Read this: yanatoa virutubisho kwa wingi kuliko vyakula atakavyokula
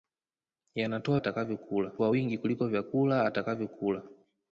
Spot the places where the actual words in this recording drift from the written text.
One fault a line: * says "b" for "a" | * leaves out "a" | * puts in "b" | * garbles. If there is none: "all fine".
* says "atakavyokula" for "virutubisho"